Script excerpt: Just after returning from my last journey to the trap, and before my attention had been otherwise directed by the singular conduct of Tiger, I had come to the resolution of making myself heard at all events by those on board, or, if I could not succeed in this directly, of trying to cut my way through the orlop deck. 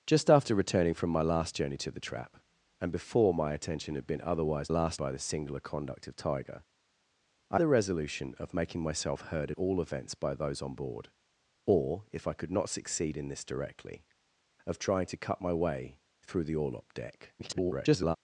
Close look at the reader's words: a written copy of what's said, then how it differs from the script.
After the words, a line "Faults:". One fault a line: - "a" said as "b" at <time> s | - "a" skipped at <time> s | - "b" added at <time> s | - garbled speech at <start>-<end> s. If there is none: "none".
Just after returning from my last journey to the trap, and before my attention had been otherwise last by the singular conduct of Tiger, I the resolution of making myself heard at all events by those on board, or, if I could not succeed in this directly, of trying to cut my way through the orlop deck. [garbled]
Faults:
- "directed" said as "last" at 4.7 s
- "had come to" skipped at 7.6 s
- garbled speech at 17.4-18.2 s